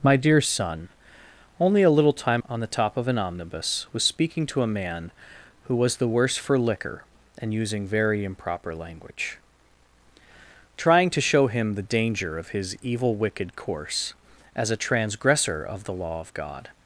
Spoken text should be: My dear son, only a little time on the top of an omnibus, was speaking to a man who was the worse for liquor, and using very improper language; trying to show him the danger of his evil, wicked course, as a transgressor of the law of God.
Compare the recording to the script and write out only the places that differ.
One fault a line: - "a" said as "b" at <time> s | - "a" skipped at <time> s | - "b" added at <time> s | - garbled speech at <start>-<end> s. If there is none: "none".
none